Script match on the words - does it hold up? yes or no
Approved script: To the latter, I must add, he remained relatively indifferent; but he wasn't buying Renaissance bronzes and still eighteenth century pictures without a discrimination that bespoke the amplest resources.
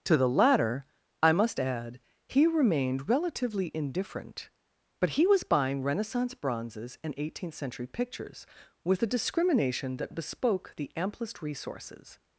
no